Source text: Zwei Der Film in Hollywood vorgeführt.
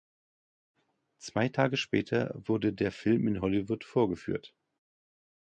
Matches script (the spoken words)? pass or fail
fail